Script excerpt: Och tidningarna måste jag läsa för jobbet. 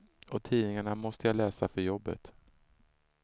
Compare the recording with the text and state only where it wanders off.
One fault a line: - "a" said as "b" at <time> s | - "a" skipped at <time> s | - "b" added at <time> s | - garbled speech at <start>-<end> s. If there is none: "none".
none